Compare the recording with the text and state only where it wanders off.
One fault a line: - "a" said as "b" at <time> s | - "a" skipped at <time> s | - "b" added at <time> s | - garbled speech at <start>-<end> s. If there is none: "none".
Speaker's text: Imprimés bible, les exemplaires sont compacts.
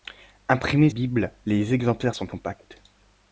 none